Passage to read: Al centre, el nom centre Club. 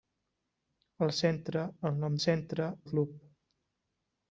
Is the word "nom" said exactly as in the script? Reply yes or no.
yes